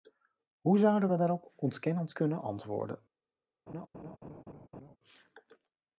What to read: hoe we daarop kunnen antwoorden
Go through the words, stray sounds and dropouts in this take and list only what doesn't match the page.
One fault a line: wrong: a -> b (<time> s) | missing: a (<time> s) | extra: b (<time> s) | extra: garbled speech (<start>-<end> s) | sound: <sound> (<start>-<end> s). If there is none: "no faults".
extra: zouden (0.8 s)
extra: ontkennend (1.6 s)
sound: laugh (3.7-5.0 s)